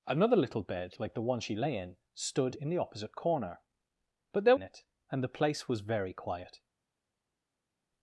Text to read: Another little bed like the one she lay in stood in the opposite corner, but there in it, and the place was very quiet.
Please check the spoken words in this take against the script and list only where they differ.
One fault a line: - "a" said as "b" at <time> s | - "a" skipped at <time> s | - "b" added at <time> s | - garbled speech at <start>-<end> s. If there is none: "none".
none